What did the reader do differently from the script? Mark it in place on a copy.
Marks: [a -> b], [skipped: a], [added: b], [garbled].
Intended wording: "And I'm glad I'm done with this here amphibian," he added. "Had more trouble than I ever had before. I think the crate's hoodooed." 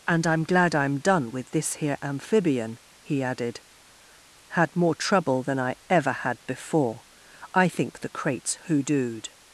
"And I'm glad I'm done with this here amphibian," he added. "Had more trouble than I ever had before. I think the crate's hoodooed."